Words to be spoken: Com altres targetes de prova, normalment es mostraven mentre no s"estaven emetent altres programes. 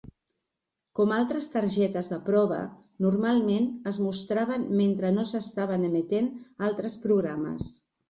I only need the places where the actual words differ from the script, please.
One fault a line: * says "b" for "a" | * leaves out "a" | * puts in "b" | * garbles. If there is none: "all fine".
all fine